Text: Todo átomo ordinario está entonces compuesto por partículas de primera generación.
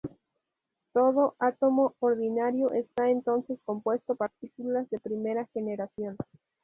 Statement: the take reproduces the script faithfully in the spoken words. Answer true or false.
false